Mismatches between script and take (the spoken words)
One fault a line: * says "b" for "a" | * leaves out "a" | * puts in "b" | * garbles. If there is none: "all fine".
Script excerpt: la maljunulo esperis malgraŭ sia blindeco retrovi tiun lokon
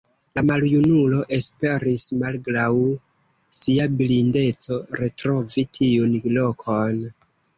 all fine